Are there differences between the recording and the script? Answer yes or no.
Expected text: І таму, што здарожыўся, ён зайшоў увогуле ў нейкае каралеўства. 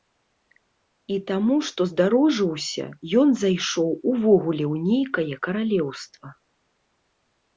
no